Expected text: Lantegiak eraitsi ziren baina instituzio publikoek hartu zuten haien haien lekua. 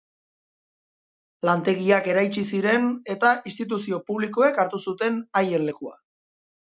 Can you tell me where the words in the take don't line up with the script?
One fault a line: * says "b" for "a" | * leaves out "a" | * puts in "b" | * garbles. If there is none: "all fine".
* says "eta" for "baina"
* leaves out "haien"